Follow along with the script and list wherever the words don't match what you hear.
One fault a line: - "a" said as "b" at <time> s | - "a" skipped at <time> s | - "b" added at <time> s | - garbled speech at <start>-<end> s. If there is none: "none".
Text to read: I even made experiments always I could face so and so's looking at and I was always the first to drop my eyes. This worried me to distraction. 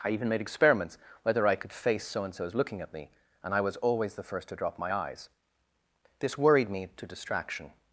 - "always" said as "whether" at 1.2 s
- "me" added at 2.9 s